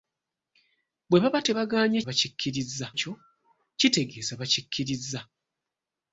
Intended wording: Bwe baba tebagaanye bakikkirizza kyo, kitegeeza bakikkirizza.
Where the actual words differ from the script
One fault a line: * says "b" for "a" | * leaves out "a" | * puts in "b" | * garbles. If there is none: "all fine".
all fine